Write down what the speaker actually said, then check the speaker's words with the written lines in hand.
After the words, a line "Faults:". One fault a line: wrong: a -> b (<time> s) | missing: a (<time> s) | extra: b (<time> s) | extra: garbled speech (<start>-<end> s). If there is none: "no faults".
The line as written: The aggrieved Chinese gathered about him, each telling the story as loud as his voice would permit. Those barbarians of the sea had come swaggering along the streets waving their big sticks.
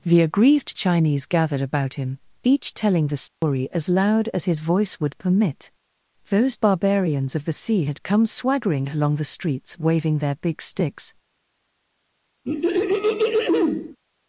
The aggrieved Chinese gathered about him, each telling the story as loud as his voice would permit. Those barbarians of the sea had come swaggering along the streets waving their big sticks.
Faults:
no faults